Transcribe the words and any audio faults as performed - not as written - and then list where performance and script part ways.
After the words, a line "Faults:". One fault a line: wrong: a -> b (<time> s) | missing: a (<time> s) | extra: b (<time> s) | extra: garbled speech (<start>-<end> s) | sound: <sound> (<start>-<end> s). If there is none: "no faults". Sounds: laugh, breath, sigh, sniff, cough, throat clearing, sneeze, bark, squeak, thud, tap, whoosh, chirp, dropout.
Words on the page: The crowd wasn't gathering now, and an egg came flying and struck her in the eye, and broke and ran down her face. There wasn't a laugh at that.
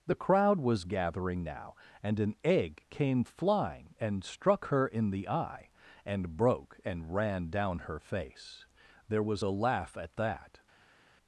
The crowd was gathering now, and an egg came flying and struck her in the eye, and broke and ran down her face. There was a laugh at that.
Faults:
wrong: wasn't -> was (0.6 s)
wrong: wasn't -> was (9.2 s)